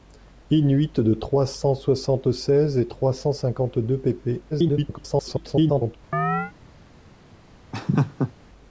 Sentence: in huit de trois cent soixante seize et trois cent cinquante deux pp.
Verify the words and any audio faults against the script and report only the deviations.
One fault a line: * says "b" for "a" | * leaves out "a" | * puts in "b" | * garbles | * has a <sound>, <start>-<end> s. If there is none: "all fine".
* garbles
* has a chirp, 6.1-6.5 s
* has a laugh, 7.7-8.3 s